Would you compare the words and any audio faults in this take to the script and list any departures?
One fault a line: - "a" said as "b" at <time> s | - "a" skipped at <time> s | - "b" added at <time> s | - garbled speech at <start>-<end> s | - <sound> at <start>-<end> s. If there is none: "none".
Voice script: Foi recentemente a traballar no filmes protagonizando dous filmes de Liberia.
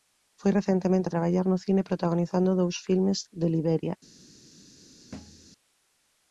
- "filmes" said as "cine" at 1.6 s
- thud at 5.1-5.5 s